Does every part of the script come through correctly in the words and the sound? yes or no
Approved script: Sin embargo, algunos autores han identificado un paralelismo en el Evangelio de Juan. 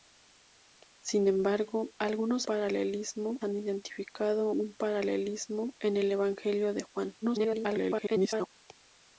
no